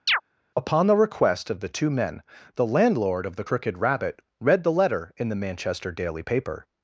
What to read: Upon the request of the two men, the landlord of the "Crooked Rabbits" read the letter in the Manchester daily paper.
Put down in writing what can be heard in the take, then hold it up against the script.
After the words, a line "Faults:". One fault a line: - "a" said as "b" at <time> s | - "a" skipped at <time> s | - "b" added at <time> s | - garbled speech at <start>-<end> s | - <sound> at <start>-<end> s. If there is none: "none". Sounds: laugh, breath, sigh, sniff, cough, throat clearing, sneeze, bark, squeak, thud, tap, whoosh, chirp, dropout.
Upon the request of the two men, the landlord of the "Crooked Rabbit" read the letter in the Manchester daily paper.
Faults:
- chirp at 0.1-0.2 s
- "Rabbits" said as "Rabbit" at 3.8 s